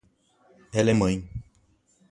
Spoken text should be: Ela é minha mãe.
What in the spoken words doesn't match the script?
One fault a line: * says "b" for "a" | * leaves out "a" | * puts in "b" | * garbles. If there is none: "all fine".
* leaves out "minha"